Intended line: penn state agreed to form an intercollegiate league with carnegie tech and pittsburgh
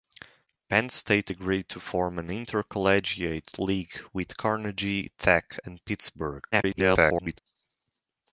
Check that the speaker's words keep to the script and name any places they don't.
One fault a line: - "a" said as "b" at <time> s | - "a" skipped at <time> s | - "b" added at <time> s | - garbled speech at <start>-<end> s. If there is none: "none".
- garbled speech at 6.5-7.4 s